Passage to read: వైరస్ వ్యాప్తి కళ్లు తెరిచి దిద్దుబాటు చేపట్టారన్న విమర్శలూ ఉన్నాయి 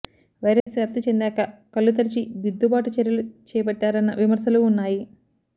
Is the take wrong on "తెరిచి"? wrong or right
right